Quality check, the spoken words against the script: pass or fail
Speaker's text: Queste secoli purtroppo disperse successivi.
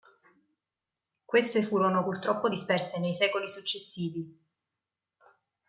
fail